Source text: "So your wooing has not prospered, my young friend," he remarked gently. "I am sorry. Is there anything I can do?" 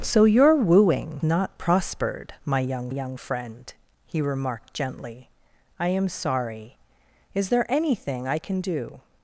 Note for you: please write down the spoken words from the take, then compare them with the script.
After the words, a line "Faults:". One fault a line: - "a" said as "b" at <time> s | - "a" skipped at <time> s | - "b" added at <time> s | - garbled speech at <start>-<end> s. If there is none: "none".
"So your wooing not prospered, my young young friend," he remarked gently. "I am sorry. Is there anything I can do?"
Faults:
- "has" skipped at 1.2 s
- "young" added at 2.9 s